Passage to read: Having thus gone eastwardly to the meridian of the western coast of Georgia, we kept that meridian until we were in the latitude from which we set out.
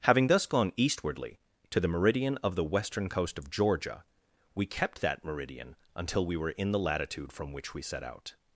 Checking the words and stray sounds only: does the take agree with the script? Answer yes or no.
yes